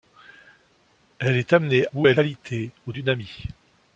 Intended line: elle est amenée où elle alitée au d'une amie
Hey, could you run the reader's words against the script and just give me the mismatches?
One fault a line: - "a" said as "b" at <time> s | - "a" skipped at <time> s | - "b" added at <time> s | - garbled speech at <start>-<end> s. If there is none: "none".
none